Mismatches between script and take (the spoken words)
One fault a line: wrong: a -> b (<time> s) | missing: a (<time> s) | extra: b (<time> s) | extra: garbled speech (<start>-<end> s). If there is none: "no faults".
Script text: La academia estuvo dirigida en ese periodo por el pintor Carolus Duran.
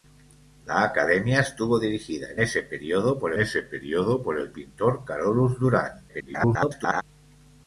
extra: ese periodo por (3.4 s)
extra: garbled speech (6.1-7.0 s)